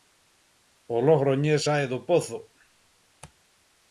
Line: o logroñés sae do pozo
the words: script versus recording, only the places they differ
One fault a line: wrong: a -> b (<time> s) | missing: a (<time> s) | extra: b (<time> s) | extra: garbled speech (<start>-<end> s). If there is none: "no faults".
no faults